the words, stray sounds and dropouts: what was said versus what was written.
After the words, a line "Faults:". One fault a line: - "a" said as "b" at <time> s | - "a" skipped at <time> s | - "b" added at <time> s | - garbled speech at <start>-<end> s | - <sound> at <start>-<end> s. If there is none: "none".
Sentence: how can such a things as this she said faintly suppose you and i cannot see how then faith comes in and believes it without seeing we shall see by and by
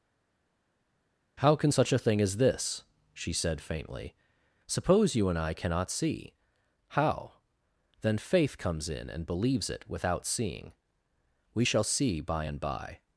how can such a thing as this she said faintly suppose you and i cannot see how then faith comes in and believes it without seeing we shall see by and by
Faults:
- "things" said as "thing" at 2.0 s